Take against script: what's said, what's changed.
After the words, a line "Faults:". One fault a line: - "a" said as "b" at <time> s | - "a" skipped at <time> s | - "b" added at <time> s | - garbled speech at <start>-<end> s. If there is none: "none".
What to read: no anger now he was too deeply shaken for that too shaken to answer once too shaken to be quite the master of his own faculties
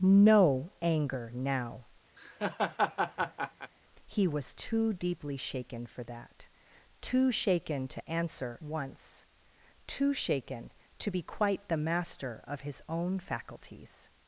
no anger now he was too deeply shaken for that too shaken to answer once too shaken to be quite the master of his own faculties
Faults:
none